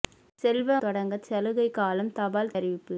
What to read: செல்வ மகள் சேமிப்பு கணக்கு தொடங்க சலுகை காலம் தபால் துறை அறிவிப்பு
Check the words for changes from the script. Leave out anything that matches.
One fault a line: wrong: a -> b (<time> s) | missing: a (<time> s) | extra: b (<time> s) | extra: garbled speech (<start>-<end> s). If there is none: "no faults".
missing: மகள் சேமிப்பு கணக்கு (0.8 s)
missing: துறை (2.5 s)